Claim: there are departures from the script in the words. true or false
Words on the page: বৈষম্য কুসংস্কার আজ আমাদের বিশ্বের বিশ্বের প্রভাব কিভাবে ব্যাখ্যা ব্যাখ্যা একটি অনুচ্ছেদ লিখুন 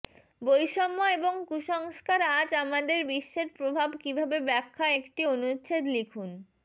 true